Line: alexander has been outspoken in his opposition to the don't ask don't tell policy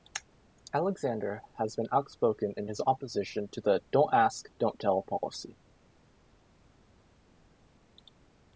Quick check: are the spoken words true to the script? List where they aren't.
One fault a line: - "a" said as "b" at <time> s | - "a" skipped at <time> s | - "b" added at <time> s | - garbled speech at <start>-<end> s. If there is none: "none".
none